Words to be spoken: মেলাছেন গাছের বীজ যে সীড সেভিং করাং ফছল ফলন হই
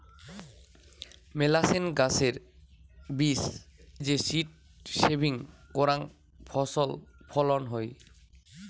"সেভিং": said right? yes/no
yes